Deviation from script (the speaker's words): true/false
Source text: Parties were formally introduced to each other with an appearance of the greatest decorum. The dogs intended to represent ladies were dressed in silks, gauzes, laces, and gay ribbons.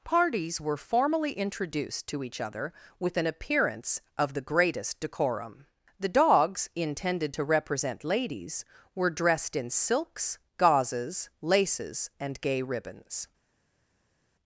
false